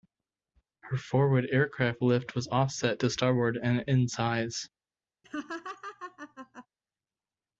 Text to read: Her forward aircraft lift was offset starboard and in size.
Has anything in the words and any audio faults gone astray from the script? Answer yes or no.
yes